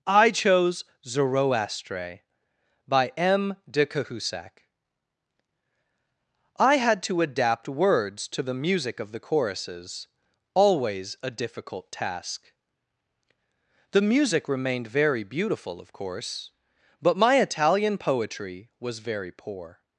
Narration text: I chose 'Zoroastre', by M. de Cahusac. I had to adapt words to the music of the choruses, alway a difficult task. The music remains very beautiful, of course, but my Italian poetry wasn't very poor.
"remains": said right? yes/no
no